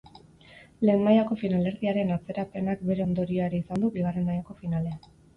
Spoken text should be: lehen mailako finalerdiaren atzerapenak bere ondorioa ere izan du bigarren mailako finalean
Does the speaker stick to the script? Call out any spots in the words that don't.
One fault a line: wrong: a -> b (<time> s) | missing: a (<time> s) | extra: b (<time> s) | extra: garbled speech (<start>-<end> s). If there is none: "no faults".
no faults